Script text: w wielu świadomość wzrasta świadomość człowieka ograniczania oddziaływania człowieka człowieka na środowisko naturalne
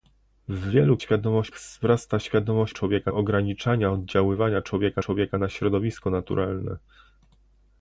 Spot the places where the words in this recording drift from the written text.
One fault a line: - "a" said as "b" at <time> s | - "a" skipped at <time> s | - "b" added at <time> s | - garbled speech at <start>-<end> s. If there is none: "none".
none